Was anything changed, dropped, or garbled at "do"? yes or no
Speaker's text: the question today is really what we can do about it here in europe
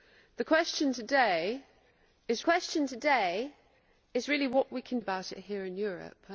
yes